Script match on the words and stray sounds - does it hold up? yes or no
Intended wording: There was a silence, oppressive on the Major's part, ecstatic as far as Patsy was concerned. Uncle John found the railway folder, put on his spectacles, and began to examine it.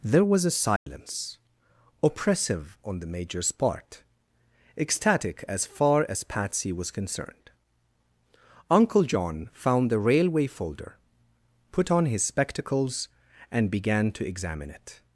no